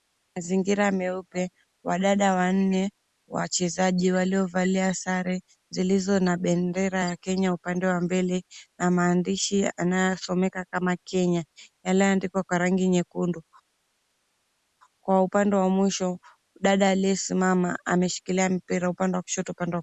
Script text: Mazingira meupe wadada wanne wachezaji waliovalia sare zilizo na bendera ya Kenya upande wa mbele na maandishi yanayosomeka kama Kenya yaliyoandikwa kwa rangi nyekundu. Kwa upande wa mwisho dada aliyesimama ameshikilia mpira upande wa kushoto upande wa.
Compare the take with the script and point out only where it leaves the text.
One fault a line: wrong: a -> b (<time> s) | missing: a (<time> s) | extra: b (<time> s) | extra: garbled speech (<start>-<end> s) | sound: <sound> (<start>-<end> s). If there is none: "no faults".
no faults